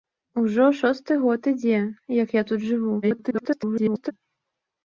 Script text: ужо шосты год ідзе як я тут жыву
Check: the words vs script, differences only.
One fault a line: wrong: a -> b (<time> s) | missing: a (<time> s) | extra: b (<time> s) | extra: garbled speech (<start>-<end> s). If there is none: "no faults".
extra: garbled speech (3.0-4.1 s)